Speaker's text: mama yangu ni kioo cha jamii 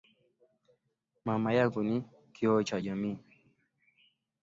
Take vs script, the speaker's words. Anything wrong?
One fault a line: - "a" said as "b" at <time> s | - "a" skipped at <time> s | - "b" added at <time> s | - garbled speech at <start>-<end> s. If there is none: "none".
none